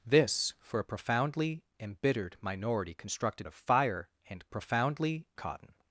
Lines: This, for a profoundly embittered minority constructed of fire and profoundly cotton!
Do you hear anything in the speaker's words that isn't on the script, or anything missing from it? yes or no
no